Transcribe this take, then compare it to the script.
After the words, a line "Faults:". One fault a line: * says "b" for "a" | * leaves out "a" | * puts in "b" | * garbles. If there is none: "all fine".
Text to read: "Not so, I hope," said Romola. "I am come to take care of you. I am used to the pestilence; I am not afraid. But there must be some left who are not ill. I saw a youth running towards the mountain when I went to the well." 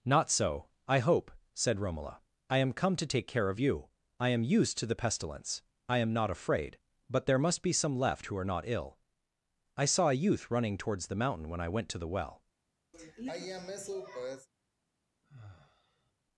"Not so, I hope," said Romola. "I am come to take care of you. I am used to the pestilence; I am not afraid. But there must be some left who are not ill. I saw a youth running towards the mountain when I went to the well."
Faults:
all fine